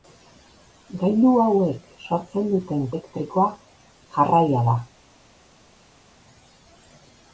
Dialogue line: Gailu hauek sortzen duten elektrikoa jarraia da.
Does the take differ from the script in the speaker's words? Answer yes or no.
no